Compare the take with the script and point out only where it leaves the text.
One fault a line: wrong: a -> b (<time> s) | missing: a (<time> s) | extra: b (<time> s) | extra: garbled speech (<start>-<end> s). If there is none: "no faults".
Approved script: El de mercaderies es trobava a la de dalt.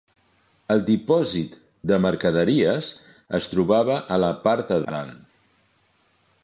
extra: dipòsit (0.9 s)
extra: part (4.5 s)